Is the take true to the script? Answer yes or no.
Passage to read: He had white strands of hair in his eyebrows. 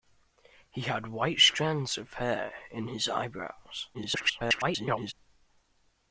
no